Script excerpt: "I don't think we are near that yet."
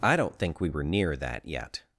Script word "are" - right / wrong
wrong